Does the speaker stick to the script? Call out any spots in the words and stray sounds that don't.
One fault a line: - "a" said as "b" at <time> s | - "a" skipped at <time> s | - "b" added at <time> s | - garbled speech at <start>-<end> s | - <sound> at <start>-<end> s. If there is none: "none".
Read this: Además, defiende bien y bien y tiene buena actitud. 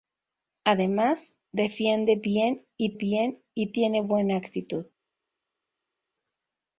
none